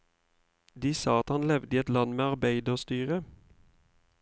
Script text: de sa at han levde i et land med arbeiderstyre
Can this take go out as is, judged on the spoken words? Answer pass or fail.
pass